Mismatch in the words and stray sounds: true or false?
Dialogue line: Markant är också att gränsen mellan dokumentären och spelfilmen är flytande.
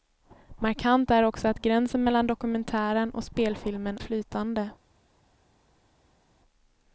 true